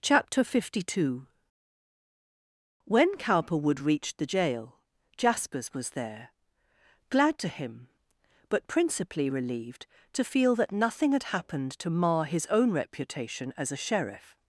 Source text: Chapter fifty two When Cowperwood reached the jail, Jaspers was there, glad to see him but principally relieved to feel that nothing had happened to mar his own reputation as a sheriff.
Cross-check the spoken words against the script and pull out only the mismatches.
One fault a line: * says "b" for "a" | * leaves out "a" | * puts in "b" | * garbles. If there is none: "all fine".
* leaves out "see"